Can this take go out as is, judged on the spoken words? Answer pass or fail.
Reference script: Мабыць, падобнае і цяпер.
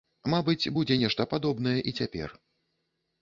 fail